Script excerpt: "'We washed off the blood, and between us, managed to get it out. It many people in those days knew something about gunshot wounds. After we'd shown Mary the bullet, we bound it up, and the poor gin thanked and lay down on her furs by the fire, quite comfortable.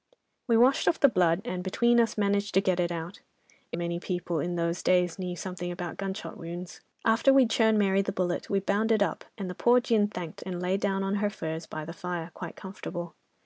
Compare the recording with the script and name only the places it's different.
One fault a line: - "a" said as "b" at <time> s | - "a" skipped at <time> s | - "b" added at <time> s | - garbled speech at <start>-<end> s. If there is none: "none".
none